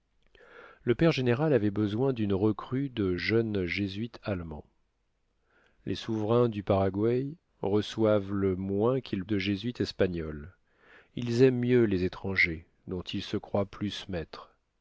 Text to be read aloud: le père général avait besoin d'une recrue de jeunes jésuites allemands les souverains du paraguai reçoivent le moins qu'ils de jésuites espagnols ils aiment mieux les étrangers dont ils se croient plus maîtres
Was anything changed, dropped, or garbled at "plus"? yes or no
no